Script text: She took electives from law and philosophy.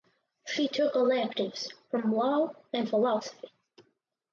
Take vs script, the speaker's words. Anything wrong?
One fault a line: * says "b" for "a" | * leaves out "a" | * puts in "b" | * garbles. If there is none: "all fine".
all fine